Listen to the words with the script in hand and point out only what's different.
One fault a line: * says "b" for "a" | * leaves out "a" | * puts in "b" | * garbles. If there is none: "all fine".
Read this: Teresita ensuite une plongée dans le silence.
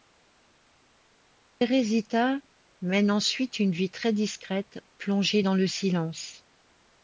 * puts in "mène"
* puts in "vie très discrète"